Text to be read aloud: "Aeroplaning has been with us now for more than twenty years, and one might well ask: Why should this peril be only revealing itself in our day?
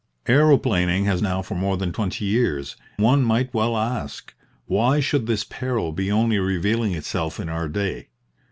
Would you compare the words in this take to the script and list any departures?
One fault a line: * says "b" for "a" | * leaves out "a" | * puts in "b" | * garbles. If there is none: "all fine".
* leaves out "been with us"
* leaves out "and"